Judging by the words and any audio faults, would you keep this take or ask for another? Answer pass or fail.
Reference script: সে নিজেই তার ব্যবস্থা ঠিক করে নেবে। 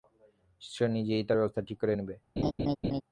fail